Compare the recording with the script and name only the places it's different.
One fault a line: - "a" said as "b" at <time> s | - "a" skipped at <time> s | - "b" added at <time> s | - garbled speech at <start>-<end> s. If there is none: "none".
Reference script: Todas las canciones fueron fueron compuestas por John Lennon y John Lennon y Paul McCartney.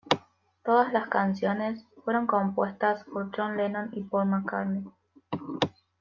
- "fueron" skipped at 2.2 s
- "John Lennon y" skipped at 4.0 s